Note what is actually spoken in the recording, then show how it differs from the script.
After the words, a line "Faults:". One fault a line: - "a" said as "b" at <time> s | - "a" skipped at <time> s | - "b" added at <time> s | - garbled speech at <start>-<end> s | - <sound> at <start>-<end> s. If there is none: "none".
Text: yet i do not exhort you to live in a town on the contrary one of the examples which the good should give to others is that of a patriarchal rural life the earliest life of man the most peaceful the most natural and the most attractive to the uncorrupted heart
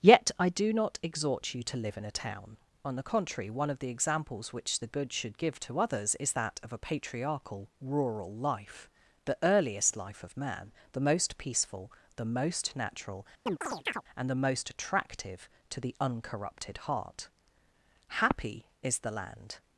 yet i do not exhort you to live in a town on the contrary one of the examples which the good should give to others is that of a patriarchal rural life the earliest life of man the most peaceful the most natural and the most attractive to the uncorrupted heart happy is the land
Faults:
- chirp at 13.5-14.0 s
- "happy is the land" added at 18.1 s